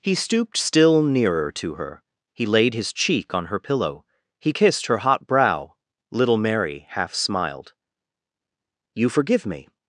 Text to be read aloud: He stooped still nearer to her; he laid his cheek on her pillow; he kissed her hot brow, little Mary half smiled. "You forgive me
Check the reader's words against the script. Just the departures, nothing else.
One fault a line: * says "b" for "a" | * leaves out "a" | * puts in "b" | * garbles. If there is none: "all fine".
all fine